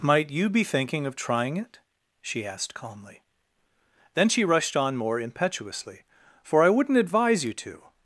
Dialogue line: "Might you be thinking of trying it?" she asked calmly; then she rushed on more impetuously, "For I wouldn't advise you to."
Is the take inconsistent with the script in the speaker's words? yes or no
no